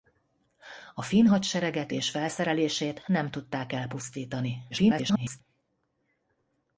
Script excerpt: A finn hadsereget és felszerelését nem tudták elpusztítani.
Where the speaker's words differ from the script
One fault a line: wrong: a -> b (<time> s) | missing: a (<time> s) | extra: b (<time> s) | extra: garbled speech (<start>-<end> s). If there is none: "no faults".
extra: garbled speech (4.7-5.4 s)